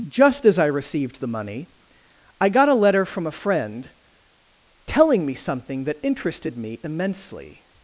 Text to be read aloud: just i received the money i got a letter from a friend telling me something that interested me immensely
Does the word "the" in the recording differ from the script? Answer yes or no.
no